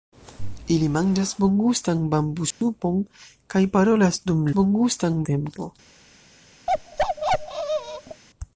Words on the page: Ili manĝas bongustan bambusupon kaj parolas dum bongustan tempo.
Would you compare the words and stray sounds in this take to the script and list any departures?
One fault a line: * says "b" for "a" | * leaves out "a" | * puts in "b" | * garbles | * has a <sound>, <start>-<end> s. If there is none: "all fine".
* has a dropout, 2.5-2.6 s
* has a bark, 6.7-8.2 s